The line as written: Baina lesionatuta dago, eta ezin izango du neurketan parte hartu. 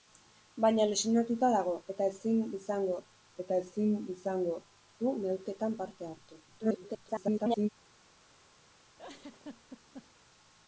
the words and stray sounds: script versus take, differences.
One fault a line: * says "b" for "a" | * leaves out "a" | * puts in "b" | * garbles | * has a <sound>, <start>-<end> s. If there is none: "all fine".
* puts in "eta ezin izango"
* garbles
* has a laugh, 9.0-10.3 s